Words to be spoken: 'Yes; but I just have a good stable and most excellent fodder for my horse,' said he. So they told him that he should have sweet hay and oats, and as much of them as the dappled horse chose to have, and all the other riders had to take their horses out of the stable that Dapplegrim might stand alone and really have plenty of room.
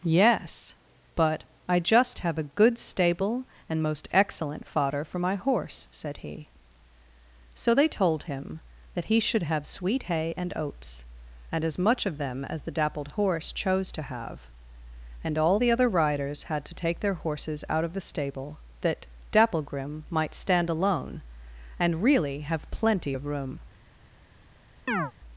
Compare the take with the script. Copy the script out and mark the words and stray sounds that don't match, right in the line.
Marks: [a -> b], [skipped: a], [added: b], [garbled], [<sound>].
'Yes; but I just have a good stable and most excellent fodder for my horse,' said he. So they told him that he should have sweet hay and oats, and as much of them as the dappled horse chose to have, and all the other riders had to take their horses out of the stable that Dapplegrim might stand alone and really have plenty of room. [chirp]